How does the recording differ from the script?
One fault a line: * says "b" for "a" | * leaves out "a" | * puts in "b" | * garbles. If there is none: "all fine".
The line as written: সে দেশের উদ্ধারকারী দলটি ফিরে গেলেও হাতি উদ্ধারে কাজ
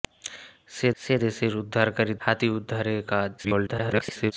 * puts in "সে"
* leaves out "দলটি ফিরে গেলেও"
* garbles